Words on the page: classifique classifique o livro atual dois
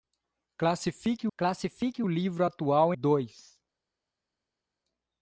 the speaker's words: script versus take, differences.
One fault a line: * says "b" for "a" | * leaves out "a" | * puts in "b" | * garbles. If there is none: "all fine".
all fine